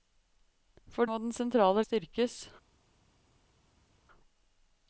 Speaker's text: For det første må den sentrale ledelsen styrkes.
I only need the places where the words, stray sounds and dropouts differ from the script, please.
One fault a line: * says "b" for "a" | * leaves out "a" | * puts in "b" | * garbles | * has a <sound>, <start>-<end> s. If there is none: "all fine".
* leaves out "det første"
* leaves out "ledelsen"